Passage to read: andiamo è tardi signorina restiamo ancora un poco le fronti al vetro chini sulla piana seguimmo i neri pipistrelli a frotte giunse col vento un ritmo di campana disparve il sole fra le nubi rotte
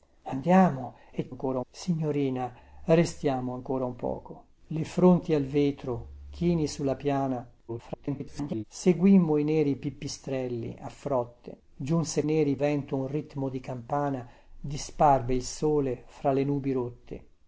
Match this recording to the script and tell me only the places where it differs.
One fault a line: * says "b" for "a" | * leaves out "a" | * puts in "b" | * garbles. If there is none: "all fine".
* says "ancora" for "tardi"
* garbles
* says "neri" for "col"